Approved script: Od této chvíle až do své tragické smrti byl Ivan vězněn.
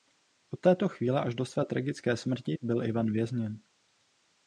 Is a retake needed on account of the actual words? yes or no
no